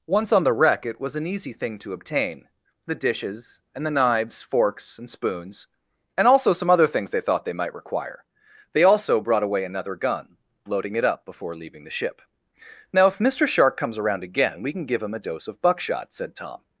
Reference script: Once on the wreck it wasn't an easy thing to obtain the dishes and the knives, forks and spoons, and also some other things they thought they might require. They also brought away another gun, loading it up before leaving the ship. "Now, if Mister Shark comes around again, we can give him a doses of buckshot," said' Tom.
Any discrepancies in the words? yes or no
yes